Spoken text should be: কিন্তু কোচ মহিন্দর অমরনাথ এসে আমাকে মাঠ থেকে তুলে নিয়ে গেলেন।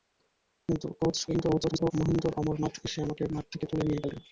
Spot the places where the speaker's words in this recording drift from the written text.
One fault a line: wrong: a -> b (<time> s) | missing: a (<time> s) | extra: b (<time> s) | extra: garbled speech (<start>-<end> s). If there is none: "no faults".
extra: garbled speech (1.3-1.9 s)